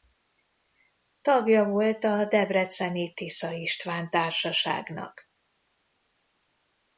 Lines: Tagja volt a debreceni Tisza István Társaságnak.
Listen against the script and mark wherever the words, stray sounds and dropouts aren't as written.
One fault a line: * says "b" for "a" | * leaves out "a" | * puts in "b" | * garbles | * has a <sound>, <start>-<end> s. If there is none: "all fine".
all fine